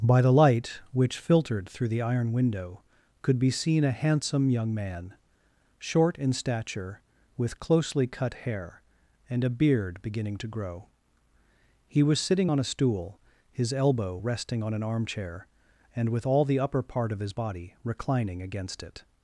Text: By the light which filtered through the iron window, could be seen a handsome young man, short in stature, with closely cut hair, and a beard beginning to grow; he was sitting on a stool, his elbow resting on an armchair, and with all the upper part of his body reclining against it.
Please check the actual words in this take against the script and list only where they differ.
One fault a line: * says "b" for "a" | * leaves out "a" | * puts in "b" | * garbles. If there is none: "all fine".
all fine